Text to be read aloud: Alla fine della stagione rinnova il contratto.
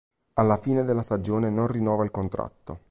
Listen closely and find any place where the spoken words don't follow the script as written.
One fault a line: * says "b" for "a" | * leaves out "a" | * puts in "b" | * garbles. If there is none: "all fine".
* puts in "non"